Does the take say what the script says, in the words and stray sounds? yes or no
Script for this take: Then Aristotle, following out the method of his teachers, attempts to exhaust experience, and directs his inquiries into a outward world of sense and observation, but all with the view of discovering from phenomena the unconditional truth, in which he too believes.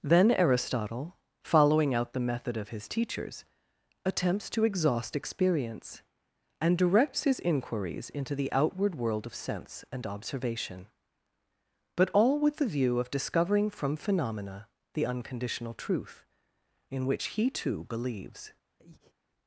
no